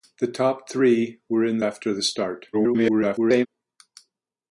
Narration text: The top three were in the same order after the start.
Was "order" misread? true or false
true